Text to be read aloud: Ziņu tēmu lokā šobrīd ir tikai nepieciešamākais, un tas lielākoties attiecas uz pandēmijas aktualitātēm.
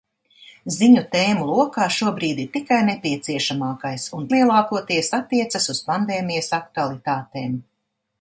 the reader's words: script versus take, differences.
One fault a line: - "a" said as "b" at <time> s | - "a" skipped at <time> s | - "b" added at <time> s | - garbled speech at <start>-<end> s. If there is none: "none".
- "tas" skipped at 4.3 s